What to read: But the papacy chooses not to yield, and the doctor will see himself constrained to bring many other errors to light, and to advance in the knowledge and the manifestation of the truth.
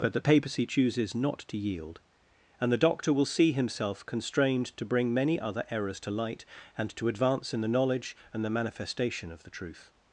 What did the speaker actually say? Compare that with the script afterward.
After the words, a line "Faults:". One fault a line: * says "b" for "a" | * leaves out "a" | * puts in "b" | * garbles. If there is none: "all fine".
But the papacy chooses not to yield, and the doctor will see himself constrained to bring many other errors to light, and to advance in the knowledge and the manifestation of the truth.
Faults:
all fine